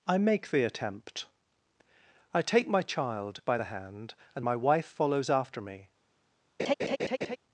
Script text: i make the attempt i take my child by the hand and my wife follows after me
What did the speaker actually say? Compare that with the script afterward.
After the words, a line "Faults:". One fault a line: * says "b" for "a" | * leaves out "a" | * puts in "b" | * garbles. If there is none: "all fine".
i make the attempt i take my child by the hand and my wife follows after me
Faults:
all fine